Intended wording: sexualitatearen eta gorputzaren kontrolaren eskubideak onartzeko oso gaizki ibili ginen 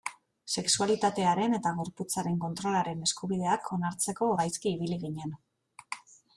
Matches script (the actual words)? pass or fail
fail